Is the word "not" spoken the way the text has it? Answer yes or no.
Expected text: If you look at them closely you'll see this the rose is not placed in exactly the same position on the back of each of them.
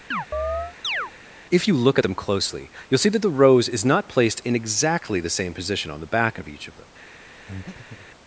yes